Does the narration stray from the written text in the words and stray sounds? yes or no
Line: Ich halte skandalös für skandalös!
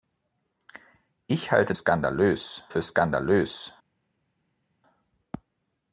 no